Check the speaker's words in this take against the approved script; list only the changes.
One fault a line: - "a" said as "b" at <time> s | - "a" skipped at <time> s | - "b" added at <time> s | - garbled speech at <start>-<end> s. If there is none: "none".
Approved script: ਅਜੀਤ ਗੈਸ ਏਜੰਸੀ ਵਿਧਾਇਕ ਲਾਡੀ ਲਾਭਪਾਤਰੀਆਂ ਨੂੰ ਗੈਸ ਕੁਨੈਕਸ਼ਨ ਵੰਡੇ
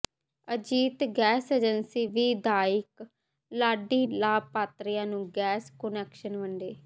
none